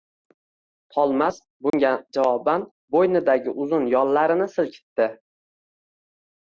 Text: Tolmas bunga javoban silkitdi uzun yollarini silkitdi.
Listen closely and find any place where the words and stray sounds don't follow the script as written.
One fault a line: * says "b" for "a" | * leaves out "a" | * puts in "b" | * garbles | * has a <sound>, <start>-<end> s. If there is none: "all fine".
* has a dropout, 1.7-1.7 s
* says "bo‘ynidagi" for "silkitdi"